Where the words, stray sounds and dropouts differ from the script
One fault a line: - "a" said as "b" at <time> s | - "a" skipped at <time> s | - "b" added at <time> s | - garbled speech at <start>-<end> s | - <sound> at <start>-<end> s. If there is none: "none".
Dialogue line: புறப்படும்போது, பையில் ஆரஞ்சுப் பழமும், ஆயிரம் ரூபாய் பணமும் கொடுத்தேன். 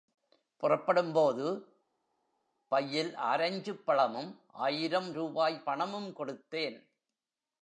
none